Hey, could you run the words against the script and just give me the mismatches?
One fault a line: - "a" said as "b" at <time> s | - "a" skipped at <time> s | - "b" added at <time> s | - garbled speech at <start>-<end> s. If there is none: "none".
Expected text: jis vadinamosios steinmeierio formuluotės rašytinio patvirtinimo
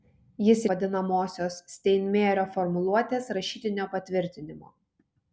none